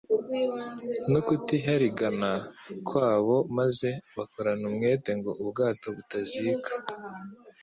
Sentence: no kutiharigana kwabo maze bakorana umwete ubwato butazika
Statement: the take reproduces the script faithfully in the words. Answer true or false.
false